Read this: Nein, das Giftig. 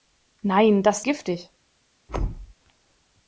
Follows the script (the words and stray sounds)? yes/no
no